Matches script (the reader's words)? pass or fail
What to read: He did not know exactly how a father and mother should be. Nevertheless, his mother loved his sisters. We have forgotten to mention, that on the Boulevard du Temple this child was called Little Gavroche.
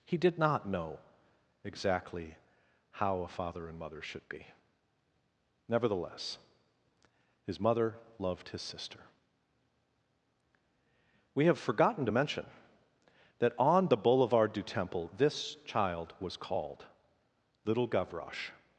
fail